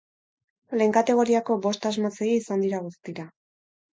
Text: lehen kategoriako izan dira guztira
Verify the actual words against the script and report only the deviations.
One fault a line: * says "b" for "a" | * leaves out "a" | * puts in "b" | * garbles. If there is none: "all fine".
* puts in "bost asmatzaile"